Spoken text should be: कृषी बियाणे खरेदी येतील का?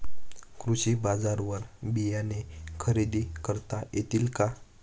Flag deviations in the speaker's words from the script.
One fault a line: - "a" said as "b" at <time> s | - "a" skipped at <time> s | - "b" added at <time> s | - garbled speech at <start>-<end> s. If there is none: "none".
- "बाजारवर" added at 1.0 s
- "करता" added at 3.5 s